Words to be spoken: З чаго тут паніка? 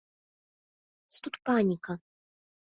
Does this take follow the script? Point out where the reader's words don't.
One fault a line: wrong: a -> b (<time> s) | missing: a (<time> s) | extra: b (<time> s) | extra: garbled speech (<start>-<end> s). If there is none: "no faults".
missing: чаго (1.2 s)